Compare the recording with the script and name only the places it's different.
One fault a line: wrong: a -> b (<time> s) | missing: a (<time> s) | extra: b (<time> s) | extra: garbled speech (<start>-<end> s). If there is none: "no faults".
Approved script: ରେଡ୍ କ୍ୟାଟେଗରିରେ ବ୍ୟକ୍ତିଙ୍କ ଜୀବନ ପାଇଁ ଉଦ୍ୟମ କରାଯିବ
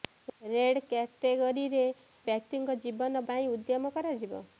no faults